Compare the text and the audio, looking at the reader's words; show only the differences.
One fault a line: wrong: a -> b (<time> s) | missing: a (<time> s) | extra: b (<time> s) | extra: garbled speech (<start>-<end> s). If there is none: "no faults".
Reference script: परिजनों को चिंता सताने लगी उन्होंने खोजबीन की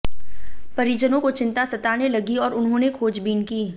extra: और (2.4 s)